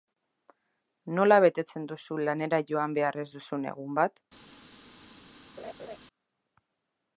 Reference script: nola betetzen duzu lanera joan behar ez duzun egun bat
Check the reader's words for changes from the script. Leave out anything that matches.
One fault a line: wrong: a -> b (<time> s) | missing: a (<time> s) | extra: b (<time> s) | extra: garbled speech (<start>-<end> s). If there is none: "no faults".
no faults